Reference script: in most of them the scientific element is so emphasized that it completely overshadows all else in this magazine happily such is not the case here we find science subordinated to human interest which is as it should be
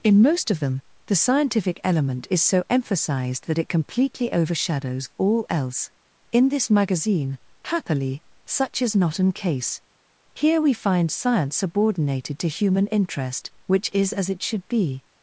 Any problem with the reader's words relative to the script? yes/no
yes